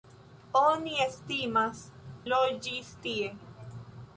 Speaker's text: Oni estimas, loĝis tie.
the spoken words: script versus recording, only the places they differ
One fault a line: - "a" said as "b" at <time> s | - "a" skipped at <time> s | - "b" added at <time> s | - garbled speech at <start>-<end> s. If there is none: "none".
none